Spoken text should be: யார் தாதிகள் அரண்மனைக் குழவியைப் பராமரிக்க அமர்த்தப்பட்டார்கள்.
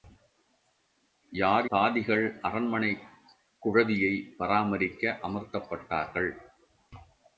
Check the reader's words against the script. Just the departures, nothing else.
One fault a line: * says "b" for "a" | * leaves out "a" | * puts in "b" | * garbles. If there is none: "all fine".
all fine